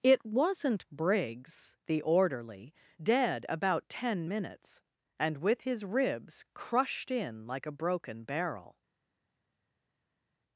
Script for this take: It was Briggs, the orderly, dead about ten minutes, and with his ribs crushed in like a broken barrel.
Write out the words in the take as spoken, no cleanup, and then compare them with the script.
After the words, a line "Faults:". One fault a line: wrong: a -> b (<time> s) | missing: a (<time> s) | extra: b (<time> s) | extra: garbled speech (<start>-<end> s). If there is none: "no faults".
It wasn't Briggs, the orderly, dead about ten minutes, and with his ribs crushed in like a broken barrel.
Faults:
wrong: was -> wasn't (0.2 s)